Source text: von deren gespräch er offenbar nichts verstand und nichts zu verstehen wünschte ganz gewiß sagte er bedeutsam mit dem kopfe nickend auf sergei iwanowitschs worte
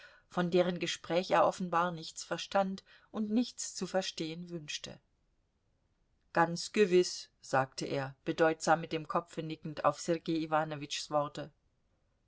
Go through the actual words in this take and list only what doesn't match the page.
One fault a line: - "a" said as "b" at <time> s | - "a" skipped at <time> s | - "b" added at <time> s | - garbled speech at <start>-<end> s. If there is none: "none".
none